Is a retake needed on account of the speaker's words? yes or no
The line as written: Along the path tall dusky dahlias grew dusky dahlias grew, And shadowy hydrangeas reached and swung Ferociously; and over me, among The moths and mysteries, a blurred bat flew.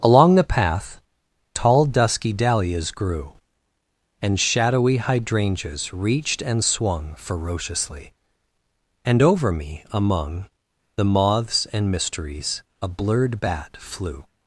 yes